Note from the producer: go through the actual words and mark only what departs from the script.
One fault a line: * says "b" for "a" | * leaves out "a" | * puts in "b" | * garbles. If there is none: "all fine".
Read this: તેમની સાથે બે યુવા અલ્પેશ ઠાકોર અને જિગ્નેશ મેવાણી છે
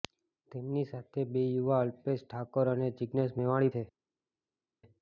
all fine